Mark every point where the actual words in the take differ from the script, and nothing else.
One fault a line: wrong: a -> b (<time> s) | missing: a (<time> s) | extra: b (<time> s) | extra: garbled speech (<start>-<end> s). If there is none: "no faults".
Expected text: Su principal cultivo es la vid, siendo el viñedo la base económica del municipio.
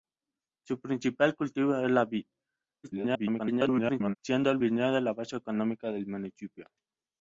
extra: garbled speech (2.8-4.2 s)